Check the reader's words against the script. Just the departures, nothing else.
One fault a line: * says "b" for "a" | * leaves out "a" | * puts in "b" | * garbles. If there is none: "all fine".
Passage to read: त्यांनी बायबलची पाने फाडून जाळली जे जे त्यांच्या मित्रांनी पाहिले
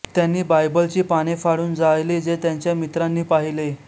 * leaves out "जे"